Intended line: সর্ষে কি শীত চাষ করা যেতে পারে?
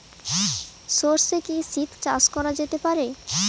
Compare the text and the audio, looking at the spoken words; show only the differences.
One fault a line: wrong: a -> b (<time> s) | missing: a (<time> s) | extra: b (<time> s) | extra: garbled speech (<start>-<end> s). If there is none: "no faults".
no faults